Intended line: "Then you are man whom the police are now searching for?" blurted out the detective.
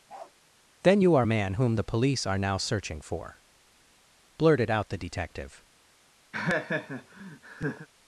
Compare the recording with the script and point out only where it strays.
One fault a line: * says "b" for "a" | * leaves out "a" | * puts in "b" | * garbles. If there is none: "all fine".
all fine